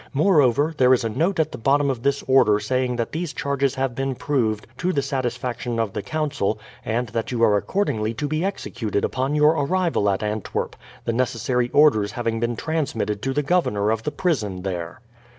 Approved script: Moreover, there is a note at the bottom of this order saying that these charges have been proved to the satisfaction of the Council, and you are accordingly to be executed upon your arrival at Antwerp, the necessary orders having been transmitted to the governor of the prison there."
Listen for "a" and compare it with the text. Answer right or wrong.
right